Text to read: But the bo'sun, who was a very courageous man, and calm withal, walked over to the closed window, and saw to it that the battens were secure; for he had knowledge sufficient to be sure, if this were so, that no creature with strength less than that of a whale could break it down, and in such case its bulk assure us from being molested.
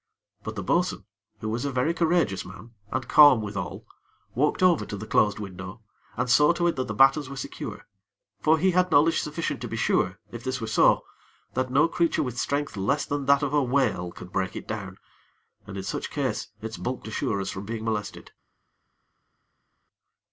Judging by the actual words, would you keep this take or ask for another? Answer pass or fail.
pass